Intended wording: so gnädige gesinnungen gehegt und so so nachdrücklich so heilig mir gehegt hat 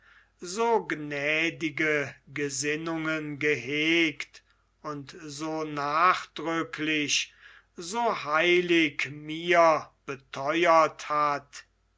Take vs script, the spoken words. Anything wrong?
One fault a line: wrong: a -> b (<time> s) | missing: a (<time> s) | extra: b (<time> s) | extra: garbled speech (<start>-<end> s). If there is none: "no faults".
missing: so (5.6 s)
wrong: gehegt -> betheuert (10.1 s)